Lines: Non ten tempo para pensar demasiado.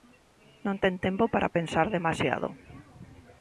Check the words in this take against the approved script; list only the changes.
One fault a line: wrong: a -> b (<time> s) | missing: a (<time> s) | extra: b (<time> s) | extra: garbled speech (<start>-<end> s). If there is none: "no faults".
no faults